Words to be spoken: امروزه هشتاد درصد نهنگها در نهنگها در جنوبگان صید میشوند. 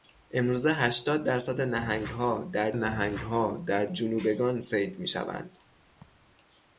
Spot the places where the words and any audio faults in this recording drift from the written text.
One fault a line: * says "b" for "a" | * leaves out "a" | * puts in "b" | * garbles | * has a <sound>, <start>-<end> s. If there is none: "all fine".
* has a laugh, 6.0-6.3 s